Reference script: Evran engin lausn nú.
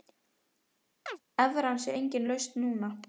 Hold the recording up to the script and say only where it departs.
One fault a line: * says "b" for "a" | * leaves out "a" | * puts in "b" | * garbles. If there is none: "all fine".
* puts in "sé"